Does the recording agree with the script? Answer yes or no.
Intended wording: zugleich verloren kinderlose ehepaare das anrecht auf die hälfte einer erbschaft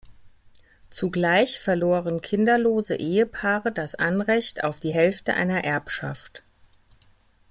yes